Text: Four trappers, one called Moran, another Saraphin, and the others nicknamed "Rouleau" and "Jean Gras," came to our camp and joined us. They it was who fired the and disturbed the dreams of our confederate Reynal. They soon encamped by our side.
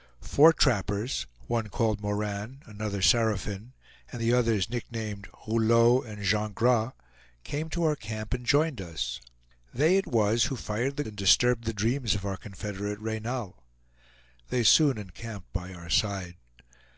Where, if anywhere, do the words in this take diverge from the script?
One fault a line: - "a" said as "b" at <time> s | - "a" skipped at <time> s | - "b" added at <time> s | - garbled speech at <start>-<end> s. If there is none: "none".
none